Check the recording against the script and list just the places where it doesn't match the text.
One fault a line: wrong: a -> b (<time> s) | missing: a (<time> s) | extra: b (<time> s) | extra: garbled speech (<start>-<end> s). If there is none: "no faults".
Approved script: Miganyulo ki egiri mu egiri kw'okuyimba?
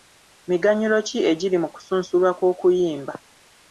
wrong: egiri -> kusunsulwa (1.7 s)